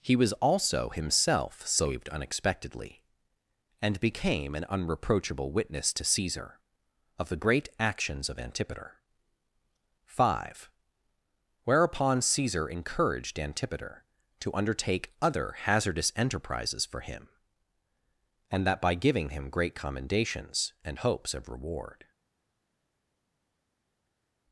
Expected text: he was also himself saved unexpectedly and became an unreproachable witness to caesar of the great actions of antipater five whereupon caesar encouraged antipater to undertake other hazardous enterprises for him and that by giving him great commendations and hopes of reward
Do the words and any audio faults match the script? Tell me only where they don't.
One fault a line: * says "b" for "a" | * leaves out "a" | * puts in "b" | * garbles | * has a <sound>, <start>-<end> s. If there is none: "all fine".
all fine